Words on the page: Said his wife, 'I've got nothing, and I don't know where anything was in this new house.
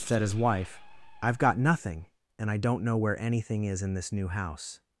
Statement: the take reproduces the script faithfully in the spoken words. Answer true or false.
false